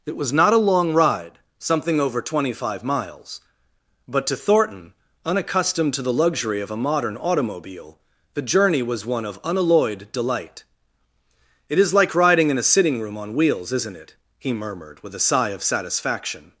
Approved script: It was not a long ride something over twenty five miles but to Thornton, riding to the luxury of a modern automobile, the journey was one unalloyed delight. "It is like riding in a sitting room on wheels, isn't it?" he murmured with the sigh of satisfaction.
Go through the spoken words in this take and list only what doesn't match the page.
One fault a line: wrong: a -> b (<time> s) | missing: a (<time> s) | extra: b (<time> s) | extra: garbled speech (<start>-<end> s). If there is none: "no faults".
wrong: riding -> unaccustomed (5.2 s)
extra: of (9.2 s)
wrong: the -> a (15.1 s)